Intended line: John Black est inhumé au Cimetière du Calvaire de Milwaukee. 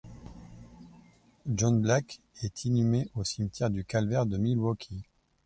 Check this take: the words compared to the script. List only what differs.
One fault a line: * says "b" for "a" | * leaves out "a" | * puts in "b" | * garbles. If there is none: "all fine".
all fine